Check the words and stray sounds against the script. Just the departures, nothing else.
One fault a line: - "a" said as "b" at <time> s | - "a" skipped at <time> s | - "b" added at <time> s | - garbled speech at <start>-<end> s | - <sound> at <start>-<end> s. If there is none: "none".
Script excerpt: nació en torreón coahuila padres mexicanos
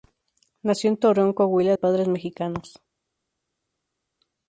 none